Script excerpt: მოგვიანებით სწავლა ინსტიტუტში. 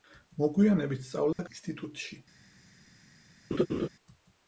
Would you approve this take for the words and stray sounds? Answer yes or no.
no